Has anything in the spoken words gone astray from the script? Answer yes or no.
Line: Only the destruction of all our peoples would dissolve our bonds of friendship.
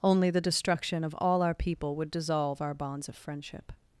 yes